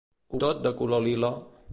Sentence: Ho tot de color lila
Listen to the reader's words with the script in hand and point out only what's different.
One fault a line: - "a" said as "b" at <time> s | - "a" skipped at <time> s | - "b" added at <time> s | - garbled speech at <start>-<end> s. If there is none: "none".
none